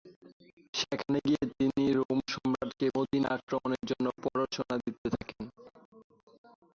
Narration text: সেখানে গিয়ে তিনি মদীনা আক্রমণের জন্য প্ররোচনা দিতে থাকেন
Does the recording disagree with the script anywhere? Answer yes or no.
yes